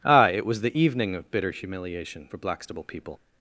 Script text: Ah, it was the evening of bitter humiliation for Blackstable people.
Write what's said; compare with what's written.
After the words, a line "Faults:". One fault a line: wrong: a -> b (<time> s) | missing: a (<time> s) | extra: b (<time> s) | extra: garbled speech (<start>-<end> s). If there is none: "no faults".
Ah, it was the evening of bitter humiliation for Blackstable people.
Faults:
no faults